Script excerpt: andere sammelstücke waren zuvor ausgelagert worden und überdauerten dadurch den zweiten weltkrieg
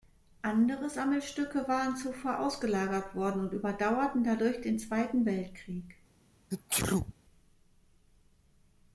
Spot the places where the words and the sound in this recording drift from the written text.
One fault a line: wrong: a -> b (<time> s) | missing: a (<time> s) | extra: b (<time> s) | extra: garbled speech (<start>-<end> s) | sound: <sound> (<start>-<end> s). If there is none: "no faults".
sound: sneeze (6.5-7.1 s)